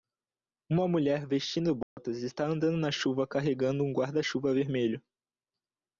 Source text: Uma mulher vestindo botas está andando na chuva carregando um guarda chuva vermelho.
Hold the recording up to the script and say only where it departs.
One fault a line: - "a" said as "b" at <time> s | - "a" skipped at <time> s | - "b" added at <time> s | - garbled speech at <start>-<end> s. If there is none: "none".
none